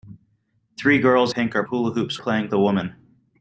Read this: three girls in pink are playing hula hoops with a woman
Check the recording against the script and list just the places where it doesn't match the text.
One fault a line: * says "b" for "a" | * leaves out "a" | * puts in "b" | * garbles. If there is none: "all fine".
* leaves out "in"
* leaves out "playing"
* says "playing" for "with"